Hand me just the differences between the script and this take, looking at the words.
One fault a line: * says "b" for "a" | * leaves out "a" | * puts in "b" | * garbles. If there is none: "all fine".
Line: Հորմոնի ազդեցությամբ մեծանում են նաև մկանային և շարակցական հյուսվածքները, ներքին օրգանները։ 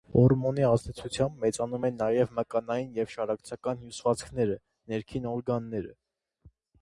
all fine